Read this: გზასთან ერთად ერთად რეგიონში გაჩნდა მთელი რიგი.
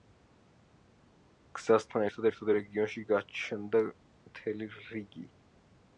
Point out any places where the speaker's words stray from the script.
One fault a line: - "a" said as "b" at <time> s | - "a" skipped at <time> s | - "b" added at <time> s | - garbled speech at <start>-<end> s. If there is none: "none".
none